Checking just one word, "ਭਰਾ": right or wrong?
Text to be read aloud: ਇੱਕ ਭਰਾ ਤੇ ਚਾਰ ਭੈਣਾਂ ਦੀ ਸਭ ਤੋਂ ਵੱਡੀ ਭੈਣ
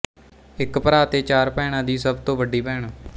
right